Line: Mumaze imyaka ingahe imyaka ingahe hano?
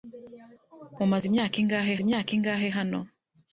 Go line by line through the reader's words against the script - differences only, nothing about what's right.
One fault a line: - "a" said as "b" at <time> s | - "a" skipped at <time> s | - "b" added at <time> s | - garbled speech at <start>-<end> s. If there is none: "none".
none